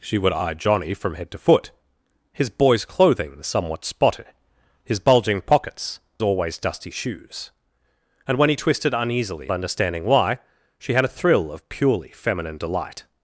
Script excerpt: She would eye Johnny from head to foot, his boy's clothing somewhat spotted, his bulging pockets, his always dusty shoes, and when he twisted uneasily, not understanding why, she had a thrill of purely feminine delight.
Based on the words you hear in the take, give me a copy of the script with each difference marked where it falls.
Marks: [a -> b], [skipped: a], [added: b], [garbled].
She would eye Johnny from head to foot, his boy's clothing somewhat spotted, his bulging pockets, [skipped: his] always dusty shoes, and when he twisted uneasily, [skipped: not] understanding why, she had a thrill of purely feminine delight.